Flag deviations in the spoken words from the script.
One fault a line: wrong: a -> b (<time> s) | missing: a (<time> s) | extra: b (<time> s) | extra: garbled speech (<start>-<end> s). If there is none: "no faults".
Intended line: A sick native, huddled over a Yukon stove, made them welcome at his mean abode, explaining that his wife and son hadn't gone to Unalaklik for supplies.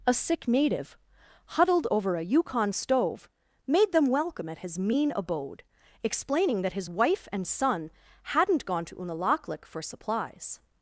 no faults